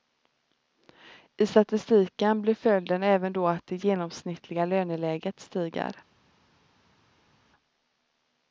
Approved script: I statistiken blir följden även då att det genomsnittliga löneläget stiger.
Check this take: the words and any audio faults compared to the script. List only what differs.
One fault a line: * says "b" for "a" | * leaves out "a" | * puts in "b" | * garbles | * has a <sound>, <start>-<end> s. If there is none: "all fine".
all fine